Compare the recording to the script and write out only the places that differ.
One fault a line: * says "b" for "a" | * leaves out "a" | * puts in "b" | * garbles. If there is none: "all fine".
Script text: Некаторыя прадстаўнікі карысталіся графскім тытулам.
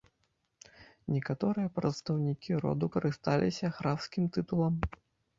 * puts in "роду"